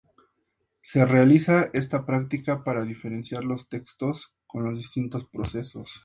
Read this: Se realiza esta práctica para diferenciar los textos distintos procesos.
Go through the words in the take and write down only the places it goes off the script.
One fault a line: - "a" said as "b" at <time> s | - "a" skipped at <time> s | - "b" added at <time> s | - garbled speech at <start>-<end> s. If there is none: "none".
- "con los" added at 4.5 s